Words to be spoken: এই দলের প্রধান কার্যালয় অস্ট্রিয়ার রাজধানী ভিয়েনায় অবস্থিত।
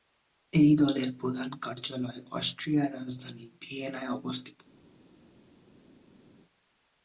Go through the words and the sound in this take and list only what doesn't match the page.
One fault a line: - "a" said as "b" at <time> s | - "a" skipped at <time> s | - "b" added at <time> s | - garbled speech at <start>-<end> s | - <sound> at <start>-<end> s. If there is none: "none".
none